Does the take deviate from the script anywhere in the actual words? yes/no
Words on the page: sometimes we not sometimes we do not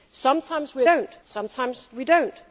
no